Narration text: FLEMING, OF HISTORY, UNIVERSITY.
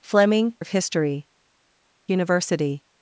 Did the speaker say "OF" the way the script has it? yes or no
yes